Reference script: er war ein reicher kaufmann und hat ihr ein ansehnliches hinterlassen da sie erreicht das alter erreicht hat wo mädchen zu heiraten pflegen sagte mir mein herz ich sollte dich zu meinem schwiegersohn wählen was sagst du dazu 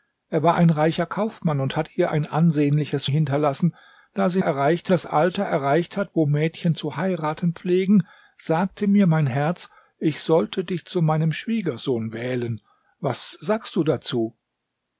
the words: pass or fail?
pass